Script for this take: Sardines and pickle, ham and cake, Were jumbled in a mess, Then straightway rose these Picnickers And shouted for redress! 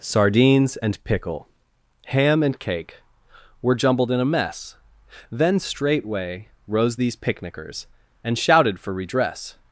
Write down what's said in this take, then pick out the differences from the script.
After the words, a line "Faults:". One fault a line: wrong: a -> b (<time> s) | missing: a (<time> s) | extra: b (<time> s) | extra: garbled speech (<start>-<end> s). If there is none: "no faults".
Sardines and pickle, ham and cake, Were jumbled in a mess, Then straightway rose these Picnickers And shouted for redress!
Faults:
no faults